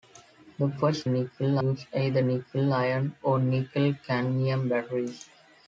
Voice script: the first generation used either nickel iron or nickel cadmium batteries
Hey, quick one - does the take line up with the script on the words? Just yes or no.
no